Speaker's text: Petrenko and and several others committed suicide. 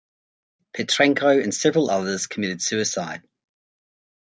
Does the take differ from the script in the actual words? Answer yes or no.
yes